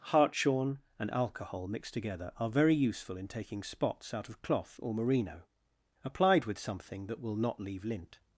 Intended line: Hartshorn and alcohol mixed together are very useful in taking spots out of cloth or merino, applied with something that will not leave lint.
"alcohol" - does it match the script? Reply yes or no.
yes